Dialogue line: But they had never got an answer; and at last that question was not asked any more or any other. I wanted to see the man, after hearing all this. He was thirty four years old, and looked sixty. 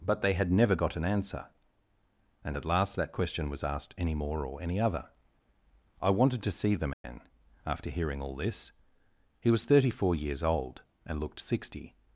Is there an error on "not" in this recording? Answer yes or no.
yes